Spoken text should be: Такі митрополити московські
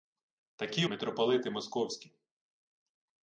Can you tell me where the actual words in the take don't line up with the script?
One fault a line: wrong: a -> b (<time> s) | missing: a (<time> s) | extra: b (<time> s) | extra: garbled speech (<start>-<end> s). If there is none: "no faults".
no faults